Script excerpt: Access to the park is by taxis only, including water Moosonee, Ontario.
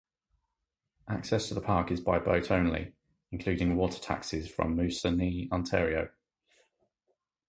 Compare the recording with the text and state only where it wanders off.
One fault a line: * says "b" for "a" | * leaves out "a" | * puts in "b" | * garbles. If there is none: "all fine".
* says "boat" for "taxis"
* puts in "taxis from"